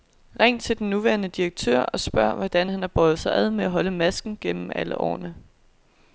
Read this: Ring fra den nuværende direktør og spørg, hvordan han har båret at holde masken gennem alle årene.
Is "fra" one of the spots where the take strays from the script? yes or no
yes